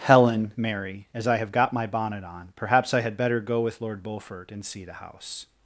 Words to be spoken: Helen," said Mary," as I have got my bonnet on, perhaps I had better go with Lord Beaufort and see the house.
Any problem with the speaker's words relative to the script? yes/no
yes